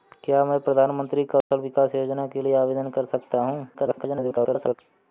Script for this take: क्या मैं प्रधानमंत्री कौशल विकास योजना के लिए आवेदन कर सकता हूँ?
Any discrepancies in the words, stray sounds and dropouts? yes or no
yes